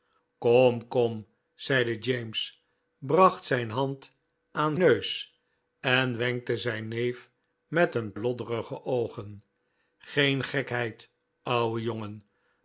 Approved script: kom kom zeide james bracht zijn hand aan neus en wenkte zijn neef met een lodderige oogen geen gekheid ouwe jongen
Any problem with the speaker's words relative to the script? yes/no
no